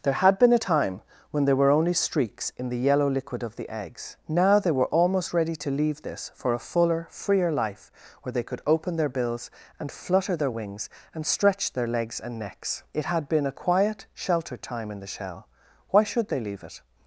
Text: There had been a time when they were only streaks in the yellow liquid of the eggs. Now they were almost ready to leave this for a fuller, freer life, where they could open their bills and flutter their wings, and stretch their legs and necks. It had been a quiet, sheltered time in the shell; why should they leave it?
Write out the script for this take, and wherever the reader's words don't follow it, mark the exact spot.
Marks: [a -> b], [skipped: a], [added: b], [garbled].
There had been a time when [they -> there] were only streaks in the yellow liquid of the eggs. Now they were almost ready to leave this for a fuller, freer life, where they could open their bills and flutter their wings, and stretch their legs and necks. It had been a quiet, sheltered time in the shell; why should they leave it?